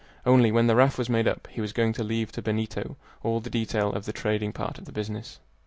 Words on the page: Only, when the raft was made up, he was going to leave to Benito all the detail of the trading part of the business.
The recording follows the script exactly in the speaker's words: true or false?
true